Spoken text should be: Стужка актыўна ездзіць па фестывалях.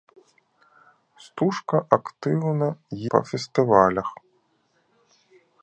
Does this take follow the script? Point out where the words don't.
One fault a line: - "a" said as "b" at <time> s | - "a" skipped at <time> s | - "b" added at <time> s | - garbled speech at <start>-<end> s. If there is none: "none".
- "ездзіць" skipped at 2.7 s